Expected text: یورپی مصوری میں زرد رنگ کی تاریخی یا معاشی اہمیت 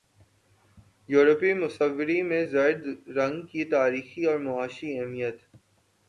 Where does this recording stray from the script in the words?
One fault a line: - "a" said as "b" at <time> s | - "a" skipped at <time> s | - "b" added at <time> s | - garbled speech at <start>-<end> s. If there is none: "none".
- "یا" said as "اور" at 4.3 s